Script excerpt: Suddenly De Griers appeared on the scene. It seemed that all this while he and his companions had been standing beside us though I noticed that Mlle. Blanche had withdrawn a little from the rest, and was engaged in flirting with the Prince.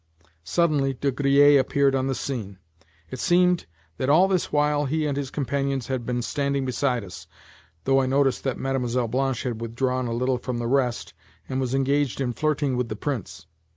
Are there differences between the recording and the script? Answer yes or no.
no